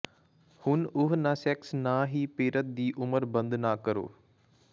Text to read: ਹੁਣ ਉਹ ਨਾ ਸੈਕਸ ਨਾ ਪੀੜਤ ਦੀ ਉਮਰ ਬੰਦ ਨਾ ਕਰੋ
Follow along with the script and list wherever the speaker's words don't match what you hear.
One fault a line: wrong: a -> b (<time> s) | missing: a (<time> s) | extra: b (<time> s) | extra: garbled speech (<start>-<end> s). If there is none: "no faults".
extra: ਹੀ (2.1 s)